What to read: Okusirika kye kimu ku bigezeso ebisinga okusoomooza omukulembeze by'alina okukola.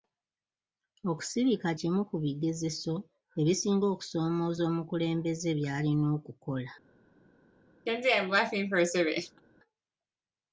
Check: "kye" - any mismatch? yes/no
yes